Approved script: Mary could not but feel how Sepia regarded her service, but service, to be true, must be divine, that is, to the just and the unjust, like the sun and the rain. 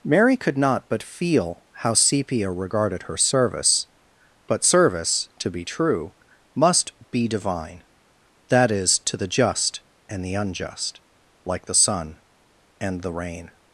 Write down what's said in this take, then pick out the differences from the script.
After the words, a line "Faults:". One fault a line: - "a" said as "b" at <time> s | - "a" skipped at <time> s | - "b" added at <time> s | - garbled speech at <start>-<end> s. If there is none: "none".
Mary could not but feel how Sepia regarded her service, but service, to be true, must be divine, that is, to the just and the unjust, like the sun and the rain.
Faults:
none